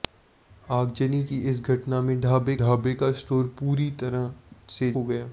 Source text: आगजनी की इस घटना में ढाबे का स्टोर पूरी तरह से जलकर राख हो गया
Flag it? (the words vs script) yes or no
yes